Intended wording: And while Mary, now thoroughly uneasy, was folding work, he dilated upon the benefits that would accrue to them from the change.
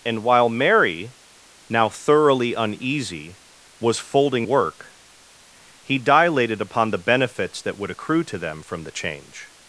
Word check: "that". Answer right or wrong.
right